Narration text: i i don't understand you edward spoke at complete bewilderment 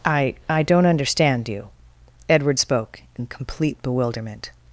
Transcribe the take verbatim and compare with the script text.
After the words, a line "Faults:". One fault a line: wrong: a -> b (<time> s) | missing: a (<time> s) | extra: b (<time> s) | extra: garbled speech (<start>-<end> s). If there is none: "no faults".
i i don't understand you edward spoke in complete bewilderment
Faults:
wrong: at -> in (3.2 s)